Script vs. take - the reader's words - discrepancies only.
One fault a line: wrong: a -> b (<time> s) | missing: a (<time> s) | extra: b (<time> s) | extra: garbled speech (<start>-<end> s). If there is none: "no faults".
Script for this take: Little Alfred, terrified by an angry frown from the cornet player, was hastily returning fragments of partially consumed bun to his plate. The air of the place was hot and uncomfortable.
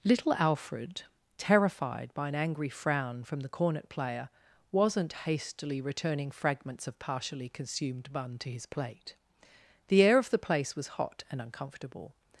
wrong: was -> wasn't (4.7 s)